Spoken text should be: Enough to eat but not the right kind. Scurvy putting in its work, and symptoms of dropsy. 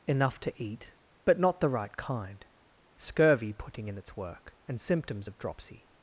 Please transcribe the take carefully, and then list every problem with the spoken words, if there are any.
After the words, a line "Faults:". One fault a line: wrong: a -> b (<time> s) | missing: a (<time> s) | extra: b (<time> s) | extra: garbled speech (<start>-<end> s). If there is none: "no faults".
Enough to eat but not the right kind. Scurvy putting in its work, and symptoms of dropsy.
Faults:
no faults